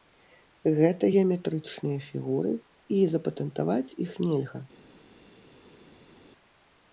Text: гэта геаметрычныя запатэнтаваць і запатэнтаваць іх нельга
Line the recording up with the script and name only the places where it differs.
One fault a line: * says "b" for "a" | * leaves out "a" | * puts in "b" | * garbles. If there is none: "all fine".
* says "фігуры" for "запатэнтаваць"